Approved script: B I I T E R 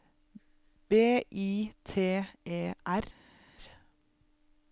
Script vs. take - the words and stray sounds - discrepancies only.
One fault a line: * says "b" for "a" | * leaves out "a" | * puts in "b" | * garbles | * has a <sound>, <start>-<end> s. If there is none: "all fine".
* leaves out "I"